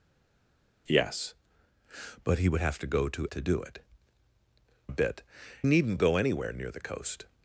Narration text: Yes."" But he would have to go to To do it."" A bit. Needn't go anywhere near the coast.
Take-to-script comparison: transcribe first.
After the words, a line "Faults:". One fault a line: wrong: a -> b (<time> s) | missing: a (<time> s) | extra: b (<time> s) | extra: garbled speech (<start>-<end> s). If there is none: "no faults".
Yes."" But he would have to go to To do it."" A bit. Needn't go anywhere near the coast.
Faults:
no faults